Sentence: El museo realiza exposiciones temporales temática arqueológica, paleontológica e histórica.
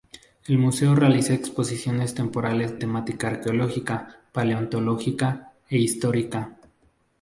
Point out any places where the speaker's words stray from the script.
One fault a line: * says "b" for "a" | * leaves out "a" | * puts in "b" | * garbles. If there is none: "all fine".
all fine